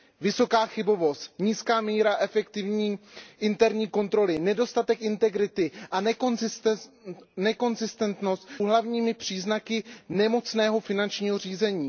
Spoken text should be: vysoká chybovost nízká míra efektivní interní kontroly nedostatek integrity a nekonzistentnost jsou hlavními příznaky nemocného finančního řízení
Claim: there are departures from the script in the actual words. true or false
true